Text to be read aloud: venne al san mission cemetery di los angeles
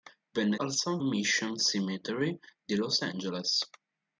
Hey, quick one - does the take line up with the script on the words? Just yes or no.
yes